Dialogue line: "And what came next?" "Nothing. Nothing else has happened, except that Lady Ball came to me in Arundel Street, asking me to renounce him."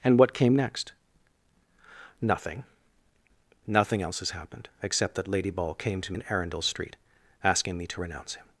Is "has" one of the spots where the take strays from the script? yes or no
no